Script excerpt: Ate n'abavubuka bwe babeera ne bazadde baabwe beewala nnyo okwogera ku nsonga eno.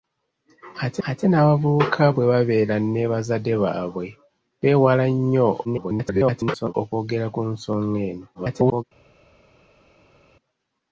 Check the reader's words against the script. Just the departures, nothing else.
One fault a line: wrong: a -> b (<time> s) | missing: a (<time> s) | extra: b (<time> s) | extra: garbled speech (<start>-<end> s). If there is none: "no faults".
extra: ate (1.1 s)
extra: garbled speech (5.6-6.7 s)
extra: garbled speech (8.3-8.8 s)